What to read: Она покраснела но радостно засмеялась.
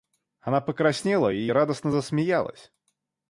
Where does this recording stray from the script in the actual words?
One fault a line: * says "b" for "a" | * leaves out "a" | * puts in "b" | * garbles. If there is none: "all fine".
* says "и" for "но"